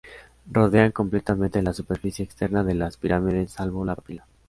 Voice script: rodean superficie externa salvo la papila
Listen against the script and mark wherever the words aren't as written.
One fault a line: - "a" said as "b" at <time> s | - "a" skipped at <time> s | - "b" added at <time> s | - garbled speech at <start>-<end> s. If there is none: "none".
- "completamente la" added at 0.9 s
- "de las pirámides" added at 2.6 s